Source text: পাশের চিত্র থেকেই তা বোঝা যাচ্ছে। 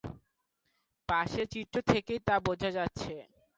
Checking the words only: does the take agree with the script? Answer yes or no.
yes